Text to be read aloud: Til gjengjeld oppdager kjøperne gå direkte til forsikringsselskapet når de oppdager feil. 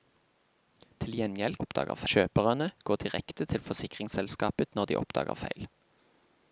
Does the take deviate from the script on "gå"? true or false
false